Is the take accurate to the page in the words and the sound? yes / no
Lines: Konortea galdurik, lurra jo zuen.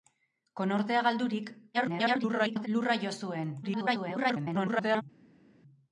no